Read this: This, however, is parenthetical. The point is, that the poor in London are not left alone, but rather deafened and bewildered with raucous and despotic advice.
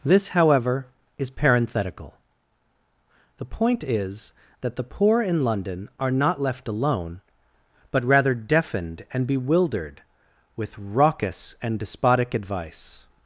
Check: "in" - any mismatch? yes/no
no